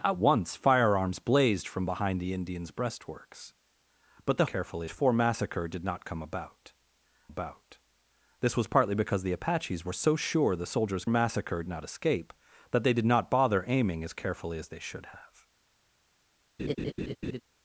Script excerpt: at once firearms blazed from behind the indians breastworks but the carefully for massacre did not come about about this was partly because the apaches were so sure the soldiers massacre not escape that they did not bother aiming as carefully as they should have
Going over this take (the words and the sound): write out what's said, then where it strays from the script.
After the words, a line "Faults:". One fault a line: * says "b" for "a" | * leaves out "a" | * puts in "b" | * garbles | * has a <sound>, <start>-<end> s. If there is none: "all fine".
at once firearms blazed from behind the indians breastworks but the carefully for massacre did not come about about this was partly because the apaches were so sure the soldiers massacre not escape that they did not bother aiming as carefully as they should have
Faults:
* has a laugh, 16.6-17.4 s